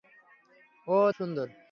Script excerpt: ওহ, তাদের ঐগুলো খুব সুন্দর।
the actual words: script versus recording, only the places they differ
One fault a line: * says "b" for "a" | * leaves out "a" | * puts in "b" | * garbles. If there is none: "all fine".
* leaves out "তাদের ঐগুলো খুব"